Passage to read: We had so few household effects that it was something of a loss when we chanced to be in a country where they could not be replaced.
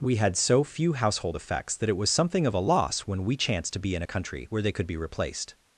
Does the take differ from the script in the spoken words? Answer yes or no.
yes